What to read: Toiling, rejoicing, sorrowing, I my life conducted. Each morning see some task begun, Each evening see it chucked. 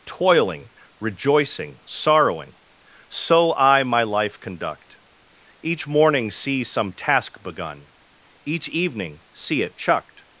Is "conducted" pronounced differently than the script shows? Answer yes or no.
yes